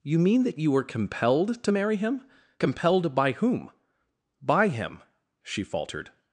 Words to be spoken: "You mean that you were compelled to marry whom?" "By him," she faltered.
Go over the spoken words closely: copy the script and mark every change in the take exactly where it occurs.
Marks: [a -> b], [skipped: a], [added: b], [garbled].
"You mean that you were compelled to marry [added: him Compelled by] whom?" "By him," she faltered.